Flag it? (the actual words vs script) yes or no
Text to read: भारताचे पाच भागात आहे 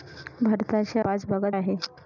no